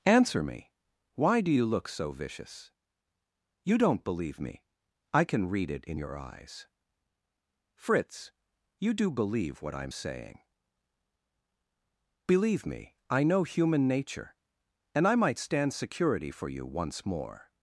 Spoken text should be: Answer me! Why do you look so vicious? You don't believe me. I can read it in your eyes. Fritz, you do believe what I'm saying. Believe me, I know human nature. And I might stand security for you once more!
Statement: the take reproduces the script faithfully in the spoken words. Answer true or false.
true